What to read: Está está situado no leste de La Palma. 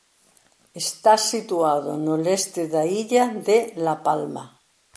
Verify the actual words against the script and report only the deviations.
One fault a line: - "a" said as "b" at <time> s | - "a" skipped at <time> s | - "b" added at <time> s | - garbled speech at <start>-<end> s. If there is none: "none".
- "está" skipped at 1.1 s
- "da illa" added at 2.7 s